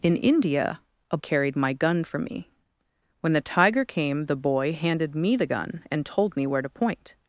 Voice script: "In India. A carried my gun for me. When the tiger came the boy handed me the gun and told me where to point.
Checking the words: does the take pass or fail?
pass